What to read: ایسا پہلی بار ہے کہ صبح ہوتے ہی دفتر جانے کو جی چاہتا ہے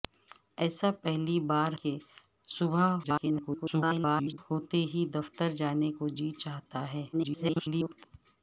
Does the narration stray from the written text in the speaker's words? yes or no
yes